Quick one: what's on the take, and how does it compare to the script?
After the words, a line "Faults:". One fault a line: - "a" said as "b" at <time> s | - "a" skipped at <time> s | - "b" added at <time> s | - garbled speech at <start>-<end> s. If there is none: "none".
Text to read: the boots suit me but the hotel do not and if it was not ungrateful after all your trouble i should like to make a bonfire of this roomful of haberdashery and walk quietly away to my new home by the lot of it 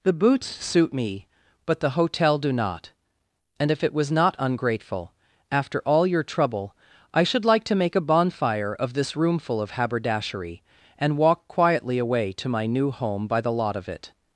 the boots suit me but the hotel do not and if it was not ungrateful after all your trouble i should like to make a bonfire of this roomful of haberdashery and walk quietly away to my new home by the lot of it
Faults:
none